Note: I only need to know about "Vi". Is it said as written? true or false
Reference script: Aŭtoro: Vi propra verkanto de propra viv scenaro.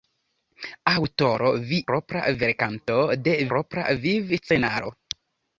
true